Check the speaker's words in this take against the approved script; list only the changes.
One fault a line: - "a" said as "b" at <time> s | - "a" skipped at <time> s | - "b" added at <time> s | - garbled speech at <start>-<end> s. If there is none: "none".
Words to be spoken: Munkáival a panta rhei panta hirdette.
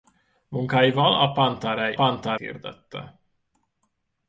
none